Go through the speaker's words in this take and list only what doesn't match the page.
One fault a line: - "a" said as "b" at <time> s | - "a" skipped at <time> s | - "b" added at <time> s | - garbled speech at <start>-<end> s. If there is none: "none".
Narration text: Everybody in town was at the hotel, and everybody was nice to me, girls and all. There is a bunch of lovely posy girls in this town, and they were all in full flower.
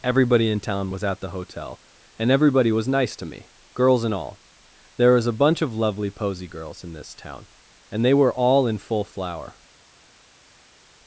- "is" said as "was" at 5.1 s